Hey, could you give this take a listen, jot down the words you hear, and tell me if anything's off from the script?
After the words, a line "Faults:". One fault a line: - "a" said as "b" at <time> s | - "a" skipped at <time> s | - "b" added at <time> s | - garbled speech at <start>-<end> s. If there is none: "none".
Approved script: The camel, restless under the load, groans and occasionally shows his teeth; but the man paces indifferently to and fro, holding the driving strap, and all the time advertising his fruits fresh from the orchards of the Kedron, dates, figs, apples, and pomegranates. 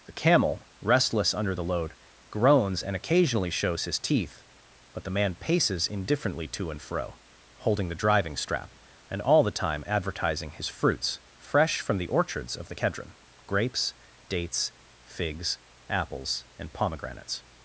The camel, restless under the load, groans and occasionally shows his teeth; but the man paces indifferently to and fro, holding the driving strap, and all the time advertising his fruits fresh from the orchards of the Kedron, grapes, dates, figs, apples, and pomegranates.
Faults:
- "grapes" added at 13.5 s